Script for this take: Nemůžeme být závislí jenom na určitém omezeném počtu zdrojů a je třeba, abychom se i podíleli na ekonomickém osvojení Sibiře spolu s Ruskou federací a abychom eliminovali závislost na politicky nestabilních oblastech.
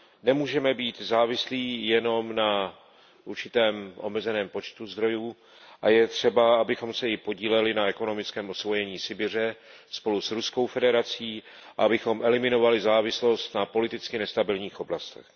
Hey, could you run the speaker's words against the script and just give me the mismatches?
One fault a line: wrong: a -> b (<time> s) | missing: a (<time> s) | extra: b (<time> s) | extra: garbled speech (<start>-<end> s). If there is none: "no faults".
no faults